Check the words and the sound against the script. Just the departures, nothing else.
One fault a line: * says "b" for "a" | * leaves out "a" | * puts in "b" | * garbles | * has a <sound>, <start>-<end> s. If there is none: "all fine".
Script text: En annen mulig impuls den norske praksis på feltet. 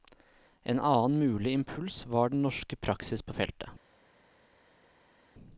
* puts in "var"